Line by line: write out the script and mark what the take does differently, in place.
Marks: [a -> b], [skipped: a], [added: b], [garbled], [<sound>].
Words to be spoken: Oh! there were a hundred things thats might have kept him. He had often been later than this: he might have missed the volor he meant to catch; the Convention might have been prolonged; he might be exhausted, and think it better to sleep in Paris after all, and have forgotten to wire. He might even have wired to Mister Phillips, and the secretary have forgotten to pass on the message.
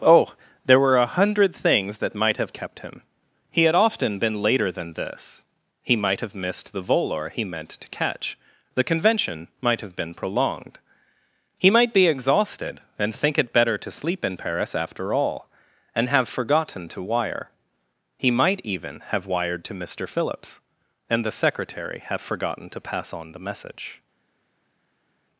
Oh! there were a hundred things [thats -> that] might have kept him. He had often been later than this: he might have missed the volor he meant to catch; the Convention might have been prolonged; he might be exhausted, and think it better to sleep in Paris after all, and have forgotten to wire. He might even have wired to Mister Phillips, and the secretary have forgotten to pass on the message.